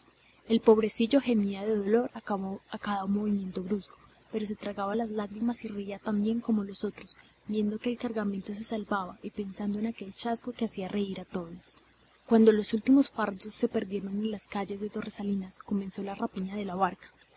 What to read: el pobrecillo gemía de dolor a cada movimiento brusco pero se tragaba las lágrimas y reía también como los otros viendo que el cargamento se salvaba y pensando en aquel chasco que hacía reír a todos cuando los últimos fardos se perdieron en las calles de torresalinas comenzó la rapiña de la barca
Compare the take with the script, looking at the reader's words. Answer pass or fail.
pass